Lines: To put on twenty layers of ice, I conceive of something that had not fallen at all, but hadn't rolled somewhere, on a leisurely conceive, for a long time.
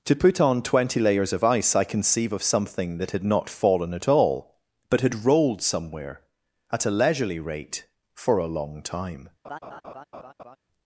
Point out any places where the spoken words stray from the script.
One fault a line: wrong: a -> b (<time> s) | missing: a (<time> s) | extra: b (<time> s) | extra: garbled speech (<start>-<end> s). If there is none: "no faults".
wrong: hadn't -> had (5.0 s)
wrong: on -> at (6.7 s)
wrong: conceive -> rate (7.4 s)